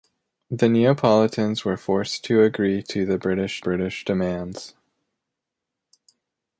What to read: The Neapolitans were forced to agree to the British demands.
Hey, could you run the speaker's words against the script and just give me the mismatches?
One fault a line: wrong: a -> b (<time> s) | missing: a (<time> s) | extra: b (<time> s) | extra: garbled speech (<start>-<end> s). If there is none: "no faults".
extra: British (3.6 s)